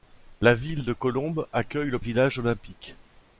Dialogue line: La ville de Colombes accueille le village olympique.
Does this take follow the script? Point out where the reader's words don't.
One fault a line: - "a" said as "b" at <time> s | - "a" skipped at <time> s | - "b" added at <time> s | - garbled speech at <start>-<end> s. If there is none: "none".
none